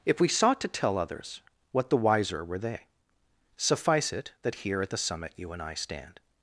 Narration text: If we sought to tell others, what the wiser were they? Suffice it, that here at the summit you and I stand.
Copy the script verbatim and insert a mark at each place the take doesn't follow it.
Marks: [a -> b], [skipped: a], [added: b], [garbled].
If we sought to tell others, what the wiser were they? Suffice it, that here at the summit you and I stand.